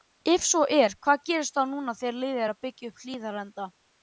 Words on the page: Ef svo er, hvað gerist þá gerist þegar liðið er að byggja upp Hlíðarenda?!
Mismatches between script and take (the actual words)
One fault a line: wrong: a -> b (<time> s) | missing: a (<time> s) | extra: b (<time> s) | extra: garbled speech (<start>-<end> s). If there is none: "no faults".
wrong: gerist -> núna (1.8 s)